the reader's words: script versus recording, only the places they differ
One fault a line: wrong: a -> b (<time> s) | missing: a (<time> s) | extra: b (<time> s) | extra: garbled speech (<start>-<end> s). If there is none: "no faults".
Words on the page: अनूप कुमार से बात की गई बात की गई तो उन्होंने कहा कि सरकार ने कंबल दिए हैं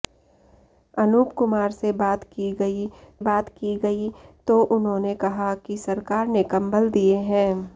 no faults